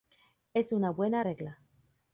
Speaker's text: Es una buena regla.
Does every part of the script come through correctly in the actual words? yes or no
yes